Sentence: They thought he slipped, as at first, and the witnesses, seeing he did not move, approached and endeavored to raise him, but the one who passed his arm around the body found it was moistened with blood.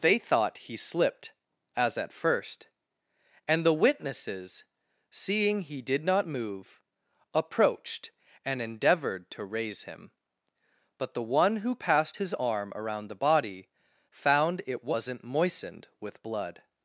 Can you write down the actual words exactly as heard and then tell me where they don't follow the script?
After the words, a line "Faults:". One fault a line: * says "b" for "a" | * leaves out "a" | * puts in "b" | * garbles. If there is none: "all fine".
They thought he slipped, as at first, and the witnesses, seeing he did not move, approached and endeavored to raise him, but the one who passed his arm around the body found it wasn't moistened with blood.
Faults:
* says "wasn't" for "was"